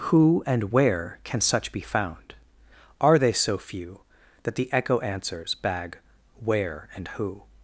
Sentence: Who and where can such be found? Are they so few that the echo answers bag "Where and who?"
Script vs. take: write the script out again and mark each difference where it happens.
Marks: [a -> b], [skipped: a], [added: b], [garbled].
Who and where can such be found? Are they so few that the echo answers bag "Where and who?"